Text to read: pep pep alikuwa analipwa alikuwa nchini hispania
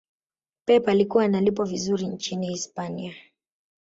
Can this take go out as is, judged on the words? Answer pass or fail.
fail